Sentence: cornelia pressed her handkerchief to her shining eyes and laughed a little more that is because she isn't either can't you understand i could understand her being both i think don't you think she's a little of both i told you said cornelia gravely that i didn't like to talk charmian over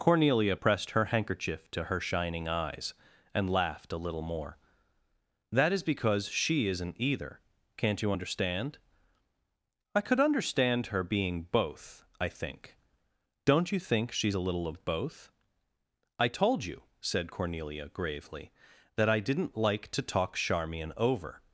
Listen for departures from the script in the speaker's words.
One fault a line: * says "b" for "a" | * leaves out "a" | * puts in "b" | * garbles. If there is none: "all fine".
all fine